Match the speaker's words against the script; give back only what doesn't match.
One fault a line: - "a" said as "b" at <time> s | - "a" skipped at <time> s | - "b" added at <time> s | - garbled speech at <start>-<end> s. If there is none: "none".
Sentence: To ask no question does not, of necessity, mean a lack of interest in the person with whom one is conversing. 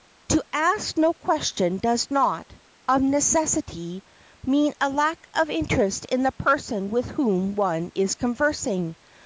none